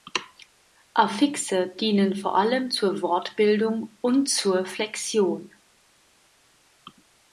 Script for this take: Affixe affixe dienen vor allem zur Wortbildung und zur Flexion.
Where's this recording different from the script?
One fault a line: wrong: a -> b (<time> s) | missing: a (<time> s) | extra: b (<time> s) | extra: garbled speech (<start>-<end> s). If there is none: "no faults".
missing: affixe (1.8 s)